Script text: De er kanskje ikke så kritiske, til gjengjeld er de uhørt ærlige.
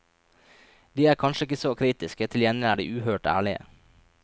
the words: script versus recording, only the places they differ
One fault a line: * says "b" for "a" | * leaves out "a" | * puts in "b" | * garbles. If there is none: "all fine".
all fine